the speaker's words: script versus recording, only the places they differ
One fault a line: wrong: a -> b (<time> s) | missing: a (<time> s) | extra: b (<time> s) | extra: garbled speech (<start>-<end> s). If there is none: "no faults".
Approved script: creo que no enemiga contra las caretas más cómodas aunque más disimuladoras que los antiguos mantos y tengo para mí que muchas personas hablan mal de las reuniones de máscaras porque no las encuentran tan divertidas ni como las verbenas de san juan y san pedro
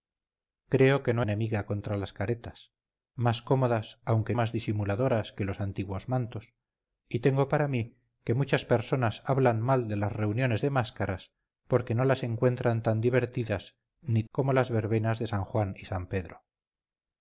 no faults